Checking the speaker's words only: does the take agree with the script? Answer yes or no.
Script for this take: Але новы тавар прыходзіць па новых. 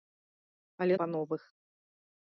no